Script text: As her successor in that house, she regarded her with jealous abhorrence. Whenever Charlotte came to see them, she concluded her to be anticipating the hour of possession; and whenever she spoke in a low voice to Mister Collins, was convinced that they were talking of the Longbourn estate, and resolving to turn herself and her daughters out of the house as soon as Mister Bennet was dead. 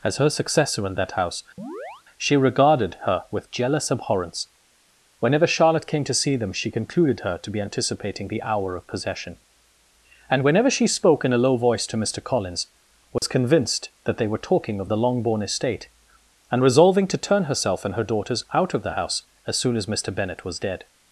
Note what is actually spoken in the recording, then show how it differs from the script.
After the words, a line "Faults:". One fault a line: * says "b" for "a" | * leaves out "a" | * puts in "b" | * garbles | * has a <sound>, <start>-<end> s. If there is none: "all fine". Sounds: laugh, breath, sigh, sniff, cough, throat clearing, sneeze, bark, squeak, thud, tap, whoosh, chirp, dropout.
As her successor in that house, she regarded her with jealous abhorrence. Whenever Charlotte came to see them, she concluded her to be anticipating the hour of possession; and whenever she spoke in a low voice to Mister Collins, was convinced that they were talking of the Longbourn estate, and resolving to turn herself and her daughters out of the house as soon as Mister Bennet was dead.
Faults:
* has a chirp, 1.6-2.0 s
* has a dropout, 13.2-13.2 s